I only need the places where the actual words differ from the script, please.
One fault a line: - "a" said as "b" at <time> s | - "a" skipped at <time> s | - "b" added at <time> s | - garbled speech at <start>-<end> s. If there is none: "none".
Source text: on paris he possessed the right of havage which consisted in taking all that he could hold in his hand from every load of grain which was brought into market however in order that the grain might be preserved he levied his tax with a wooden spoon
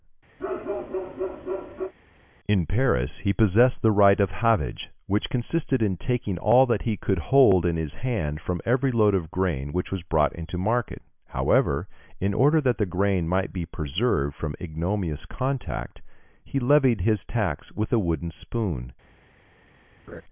- "on" said as "in" at 2.5 s
- "from ignominious contact" added at 14.4 s